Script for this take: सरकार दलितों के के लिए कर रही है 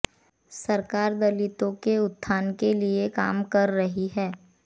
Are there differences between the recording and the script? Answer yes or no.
yes